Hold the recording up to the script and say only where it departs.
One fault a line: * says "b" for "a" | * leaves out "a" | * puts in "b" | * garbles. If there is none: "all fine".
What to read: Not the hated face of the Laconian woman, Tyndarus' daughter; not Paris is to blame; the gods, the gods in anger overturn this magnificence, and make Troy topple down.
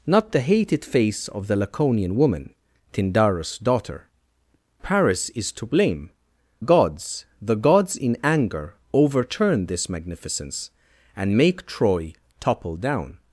* leaves out "not"
* leaves out "the"